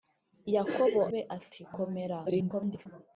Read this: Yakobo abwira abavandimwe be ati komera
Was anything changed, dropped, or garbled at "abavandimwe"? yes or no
yes